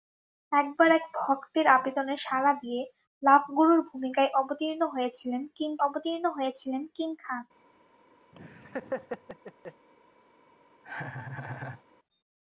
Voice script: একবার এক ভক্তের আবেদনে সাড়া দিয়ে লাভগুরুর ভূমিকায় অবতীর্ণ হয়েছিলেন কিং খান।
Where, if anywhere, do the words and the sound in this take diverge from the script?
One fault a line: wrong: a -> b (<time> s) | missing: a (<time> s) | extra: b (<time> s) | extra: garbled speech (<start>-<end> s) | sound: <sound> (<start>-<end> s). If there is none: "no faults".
extra: অবতীর্ণ হয়েছিলেন কিং (5.9 s)
sound: laugh (8.3-9.9 s)
sound: laugh (10.8-11.8 s)